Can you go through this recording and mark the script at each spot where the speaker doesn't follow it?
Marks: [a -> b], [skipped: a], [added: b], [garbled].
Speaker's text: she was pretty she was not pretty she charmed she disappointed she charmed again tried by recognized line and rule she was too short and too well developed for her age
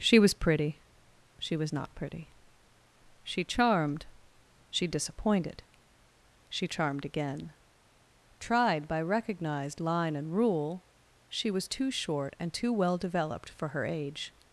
she was pretty she was not pretty she charmed she disappointed she charmed again tried by recognized line and rule she was too short and too well developed for her age